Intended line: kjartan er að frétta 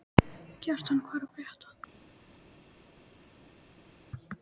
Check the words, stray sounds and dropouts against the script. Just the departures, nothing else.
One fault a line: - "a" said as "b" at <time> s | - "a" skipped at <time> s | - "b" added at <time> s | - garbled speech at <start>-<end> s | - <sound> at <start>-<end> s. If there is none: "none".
- "hvað" added at 1.1 s